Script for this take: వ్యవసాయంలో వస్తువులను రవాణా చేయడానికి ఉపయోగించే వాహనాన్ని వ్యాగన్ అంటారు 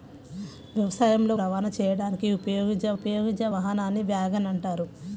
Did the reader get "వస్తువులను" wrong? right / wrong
wrong